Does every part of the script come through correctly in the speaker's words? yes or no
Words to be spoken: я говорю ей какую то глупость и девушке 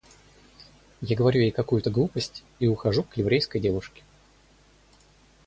no